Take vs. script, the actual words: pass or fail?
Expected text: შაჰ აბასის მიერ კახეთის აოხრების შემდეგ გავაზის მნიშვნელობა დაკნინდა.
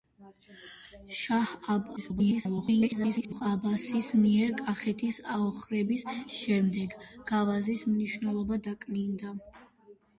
fail